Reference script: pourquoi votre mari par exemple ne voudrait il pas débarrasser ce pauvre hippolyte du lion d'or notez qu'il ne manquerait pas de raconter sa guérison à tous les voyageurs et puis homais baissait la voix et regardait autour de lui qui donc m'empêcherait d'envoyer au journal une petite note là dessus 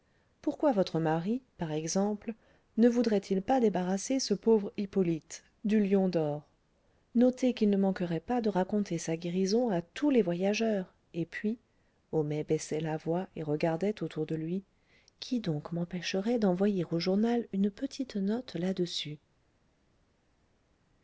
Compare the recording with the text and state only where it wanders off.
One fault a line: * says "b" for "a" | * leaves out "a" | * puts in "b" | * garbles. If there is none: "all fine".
all fine